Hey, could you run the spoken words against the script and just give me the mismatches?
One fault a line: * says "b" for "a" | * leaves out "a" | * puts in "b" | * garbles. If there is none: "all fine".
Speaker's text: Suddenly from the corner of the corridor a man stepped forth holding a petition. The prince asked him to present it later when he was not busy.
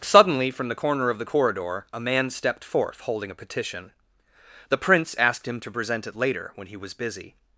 * leaves out "not"